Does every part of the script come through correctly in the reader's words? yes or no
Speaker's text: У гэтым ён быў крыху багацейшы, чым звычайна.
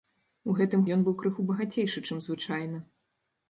yes